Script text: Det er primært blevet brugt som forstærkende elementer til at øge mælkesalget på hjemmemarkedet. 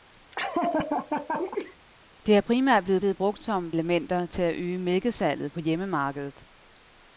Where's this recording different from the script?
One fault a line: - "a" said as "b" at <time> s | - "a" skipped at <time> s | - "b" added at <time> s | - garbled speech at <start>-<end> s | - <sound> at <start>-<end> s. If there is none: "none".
- laugh at 0.3-1.8 s
- "blevet" added at 3.0 s
- "forstærkende" skipped at 3.7 s